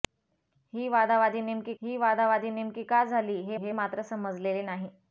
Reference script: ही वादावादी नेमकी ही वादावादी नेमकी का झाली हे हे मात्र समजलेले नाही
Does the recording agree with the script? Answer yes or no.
yes